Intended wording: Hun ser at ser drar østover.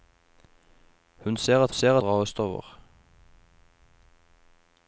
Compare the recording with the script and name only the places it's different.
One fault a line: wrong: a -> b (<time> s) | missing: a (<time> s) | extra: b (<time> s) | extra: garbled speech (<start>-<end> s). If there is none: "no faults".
no faults